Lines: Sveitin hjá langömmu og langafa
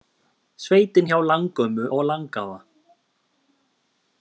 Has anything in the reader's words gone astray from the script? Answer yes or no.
no